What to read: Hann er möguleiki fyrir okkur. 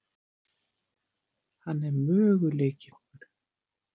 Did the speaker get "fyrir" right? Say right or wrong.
wrong